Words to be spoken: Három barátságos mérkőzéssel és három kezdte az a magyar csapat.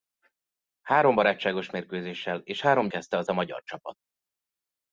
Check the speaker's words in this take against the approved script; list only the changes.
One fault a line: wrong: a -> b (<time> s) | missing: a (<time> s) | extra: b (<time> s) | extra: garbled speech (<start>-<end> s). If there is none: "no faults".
no faults